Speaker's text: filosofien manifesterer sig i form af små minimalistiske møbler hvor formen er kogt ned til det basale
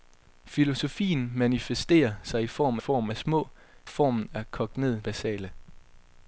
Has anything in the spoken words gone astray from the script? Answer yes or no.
yes